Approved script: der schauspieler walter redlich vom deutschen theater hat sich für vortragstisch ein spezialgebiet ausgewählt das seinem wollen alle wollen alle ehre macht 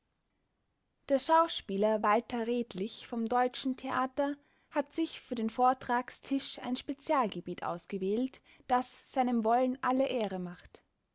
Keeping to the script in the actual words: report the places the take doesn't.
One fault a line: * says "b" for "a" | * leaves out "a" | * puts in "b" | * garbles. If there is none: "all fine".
* puts in "den"
* leaves out "wollen alle"